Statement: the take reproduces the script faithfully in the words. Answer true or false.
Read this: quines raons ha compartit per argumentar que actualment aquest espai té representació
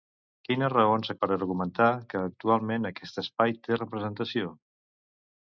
false